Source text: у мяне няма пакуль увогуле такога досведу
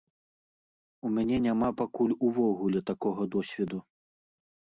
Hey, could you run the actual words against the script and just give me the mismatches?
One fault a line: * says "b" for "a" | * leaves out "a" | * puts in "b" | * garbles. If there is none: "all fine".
all fine